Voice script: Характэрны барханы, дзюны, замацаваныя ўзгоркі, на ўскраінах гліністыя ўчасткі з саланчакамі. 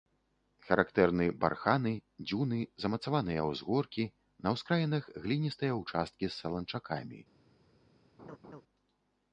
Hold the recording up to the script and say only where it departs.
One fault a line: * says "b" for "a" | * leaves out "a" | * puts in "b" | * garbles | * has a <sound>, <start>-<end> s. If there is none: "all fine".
* has a laugh, 8.2-8.6 s